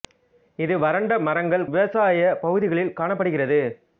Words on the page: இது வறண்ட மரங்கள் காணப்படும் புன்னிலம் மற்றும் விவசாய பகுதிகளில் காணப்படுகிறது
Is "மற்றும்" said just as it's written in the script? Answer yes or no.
no